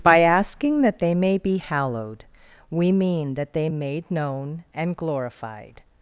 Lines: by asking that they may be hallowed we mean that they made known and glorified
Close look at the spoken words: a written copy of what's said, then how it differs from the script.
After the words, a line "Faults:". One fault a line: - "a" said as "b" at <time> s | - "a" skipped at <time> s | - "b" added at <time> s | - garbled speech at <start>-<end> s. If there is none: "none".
by asking that they may be hallowed we mean that they made known and glorified
Faults:
none